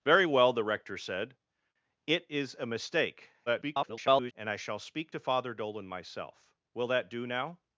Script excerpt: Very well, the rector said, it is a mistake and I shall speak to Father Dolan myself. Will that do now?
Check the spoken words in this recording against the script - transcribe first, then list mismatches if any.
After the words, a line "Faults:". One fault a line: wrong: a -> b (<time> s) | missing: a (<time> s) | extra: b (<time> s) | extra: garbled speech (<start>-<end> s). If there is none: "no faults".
Very well, the rector said, it is a mistake [garbled] and I shall speak to Father Dolan myself. Will that do now?
Faults:
extra: garbled speech (3.5-4.3 s)